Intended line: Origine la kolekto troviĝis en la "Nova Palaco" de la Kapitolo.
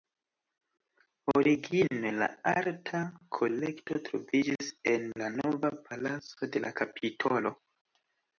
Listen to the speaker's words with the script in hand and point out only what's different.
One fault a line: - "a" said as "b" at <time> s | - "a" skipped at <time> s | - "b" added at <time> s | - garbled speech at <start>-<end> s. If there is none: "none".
- "arta" added at 2.5 s